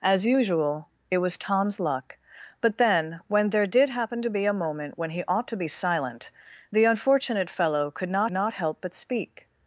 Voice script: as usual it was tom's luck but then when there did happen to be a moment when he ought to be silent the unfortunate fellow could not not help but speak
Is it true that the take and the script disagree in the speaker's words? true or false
false